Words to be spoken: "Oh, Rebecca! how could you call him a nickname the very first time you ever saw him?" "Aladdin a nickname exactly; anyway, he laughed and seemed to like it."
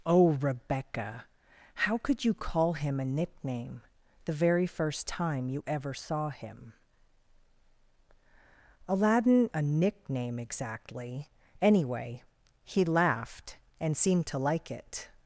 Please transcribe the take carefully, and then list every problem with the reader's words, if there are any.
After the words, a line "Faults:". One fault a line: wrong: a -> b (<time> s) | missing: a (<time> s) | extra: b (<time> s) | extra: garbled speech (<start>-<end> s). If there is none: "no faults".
"Oh, Rebecca! how could you call him a nickname the very first time you ever saw him?" "Aladdin a nickname exactly; anyway, he laughed and seemed to like it."
Faults:
no faults